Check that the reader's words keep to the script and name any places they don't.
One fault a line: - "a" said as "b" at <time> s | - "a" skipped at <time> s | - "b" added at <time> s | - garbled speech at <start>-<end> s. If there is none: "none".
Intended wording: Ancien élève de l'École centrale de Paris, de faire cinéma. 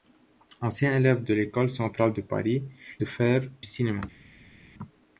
none